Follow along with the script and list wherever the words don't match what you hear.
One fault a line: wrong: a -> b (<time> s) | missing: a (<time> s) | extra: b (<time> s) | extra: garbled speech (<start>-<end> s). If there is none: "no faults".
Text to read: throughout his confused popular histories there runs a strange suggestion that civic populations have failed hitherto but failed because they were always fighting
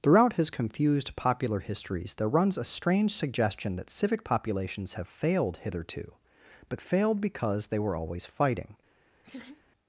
no faults